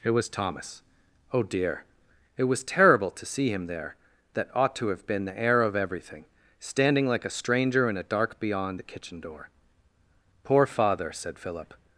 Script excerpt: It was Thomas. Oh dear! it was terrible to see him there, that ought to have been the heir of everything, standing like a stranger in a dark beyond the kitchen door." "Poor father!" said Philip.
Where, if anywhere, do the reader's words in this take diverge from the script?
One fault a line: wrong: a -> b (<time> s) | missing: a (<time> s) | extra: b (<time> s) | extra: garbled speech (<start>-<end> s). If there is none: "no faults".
no faults